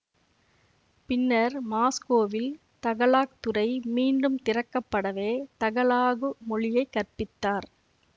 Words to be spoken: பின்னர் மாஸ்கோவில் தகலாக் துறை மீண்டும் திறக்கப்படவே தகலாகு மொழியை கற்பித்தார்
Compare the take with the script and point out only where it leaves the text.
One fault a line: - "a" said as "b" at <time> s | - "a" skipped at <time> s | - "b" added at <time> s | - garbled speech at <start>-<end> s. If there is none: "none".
none